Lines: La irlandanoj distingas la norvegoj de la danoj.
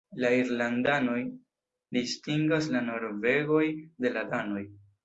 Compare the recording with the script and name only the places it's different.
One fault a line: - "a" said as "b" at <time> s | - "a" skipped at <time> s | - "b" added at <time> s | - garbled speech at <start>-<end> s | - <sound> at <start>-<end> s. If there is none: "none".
none